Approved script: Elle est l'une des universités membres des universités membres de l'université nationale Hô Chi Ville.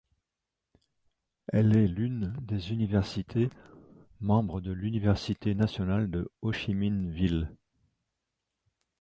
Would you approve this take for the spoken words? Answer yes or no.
no